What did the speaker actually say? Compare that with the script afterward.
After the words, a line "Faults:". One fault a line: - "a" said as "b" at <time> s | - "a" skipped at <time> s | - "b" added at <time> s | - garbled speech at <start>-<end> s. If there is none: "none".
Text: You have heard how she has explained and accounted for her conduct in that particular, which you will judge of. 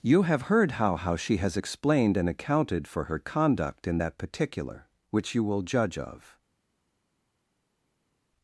You have heard how how she has explained and accounted for her conduct in that particular, which you will judge of.
Faults:
- "how" added at 1.0 s